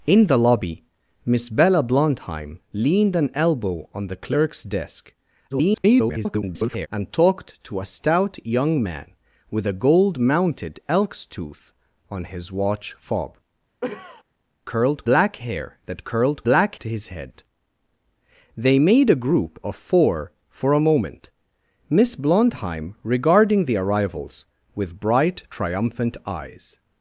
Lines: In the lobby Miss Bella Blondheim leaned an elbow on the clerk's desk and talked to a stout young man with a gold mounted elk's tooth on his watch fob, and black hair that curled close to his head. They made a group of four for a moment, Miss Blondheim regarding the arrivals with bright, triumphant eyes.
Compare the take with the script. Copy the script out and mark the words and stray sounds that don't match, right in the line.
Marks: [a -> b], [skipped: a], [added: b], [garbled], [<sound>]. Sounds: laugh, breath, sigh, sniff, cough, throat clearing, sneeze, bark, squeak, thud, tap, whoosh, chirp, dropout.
In the lobby Miss Bella Blondheim leaned an elbow on the clerk's desk [garbled] and talked to a stout young man with a gold mounted elk's tooth on his watch fob, [cough] [and -> curled] black hair that curled [close -> black] to his head. They made a group of four for a moment, Miss Blondheim regarding the arrivals with bright, triumphant eyes.